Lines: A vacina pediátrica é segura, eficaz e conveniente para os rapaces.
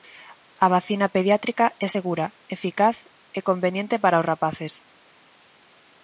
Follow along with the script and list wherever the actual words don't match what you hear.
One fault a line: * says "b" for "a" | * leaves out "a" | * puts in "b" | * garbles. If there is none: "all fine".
all fine